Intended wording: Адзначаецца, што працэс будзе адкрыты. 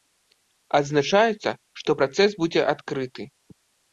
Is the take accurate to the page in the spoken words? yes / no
yes